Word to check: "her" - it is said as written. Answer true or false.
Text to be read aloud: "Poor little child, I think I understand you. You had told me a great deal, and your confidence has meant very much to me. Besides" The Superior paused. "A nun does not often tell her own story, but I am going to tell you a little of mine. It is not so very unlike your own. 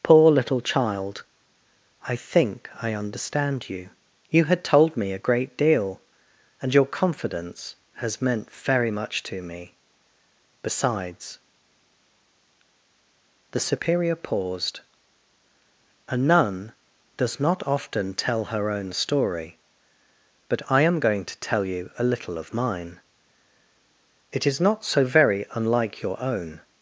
true